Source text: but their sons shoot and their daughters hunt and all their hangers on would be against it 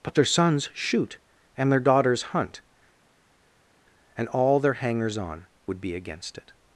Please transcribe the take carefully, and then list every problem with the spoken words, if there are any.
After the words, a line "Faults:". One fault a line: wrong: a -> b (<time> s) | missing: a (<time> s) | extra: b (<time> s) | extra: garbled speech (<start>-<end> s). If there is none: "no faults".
but their sons shoot and their daughters hunt and all their hangers on would be against it
Faults:
no faults